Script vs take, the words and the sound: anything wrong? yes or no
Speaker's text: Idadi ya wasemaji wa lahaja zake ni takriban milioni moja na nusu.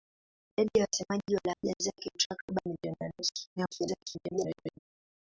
yes